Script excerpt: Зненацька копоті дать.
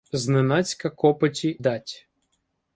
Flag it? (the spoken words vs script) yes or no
no